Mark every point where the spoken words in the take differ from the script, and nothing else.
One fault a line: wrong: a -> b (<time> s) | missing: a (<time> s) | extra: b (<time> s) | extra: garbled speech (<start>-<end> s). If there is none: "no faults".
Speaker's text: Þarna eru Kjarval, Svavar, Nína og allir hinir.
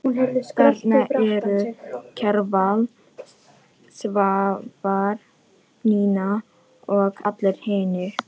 no faults